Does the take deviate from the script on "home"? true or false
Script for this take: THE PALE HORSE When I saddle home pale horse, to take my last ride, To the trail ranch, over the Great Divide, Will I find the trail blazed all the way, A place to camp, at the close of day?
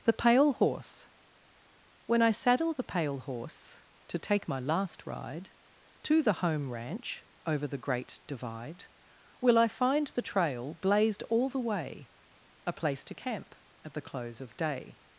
true